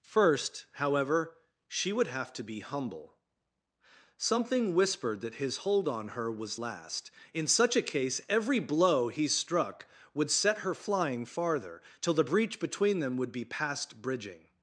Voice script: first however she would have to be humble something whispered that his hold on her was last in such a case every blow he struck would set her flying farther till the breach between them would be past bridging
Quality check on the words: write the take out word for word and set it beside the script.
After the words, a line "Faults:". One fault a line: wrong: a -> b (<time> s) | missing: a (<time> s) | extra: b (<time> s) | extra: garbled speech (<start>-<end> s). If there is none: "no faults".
first however she would have to be humble something whispered that his hold on her was last in such a case every blow he struck would set her flying farther till the breach between them would be past bridging
Faults:
no faults